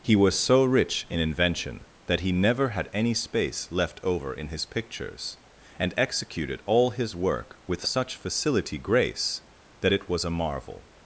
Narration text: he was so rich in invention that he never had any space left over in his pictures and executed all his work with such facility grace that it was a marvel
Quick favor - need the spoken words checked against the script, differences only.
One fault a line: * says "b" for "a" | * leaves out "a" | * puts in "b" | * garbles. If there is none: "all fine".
all fine